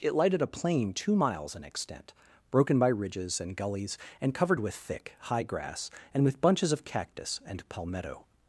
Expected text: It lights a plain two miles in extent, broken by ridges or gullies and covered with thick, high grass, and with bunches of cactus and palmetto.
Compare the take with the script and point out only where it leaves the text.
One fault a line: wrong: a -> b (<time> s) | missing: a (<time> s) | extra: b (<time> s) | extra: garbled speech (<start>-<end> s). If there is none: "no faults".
wrong: lights -> lighted (0.1 s)
wrong: or -> and (3.4 s)